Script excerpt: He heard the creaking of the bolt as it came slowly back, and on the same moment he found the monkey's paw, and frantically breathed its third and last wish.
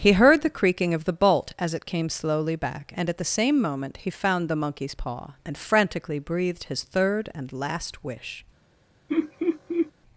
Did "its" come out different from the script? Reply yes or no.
yes